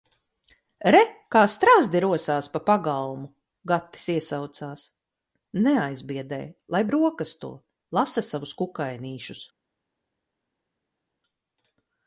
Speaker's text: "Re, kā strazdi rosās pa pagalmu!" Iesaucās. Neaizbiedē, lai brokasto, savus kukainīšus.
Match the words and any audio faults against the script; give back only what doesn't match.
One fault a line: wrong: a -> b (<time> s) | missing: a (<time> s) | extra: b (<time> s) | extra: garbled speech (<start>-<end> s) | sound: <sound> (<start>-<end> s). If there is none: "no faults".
extra: Gatis (3.7 s)
extra: lasa (8.0 s)